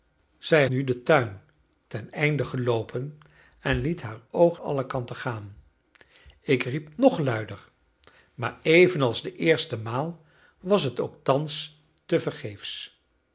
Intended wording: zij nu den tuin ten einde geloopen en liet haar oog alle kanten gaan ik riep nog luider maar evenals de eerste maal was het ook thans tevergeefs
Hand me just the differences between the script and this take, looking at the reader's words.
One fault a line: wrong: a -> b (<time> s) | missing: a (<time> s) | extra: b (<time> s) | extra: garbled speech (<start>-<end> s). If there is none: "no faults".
no faults